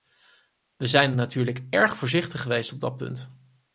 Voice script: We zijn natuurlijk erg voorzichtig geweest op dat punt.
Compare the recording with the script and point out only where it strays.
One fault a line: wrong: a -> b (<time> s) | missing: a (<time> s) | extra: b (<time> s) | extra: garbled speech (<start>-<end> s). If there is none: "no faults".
no faults